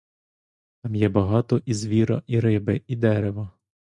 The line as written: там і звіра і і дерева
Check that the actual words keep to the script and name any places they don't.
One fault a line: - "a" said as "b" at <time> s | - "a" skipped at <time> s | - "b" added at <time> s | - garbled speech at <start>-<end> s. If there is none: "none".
- "є багато" added at 0.9 s
- "риби" added at 2.4 s